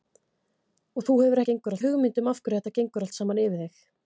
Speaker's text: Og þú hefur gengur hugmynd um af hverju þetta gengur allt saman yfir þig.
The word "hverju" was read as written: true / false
true